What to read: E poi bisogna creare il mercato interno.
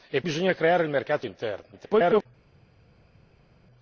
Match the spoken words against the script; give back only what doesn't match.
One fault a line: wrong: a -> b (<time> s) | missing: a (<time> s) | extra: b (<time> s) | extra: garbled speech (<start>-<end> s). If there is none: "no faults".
missing: poi (0.2 s)
extra: garbled speech (1.7-2.3 s)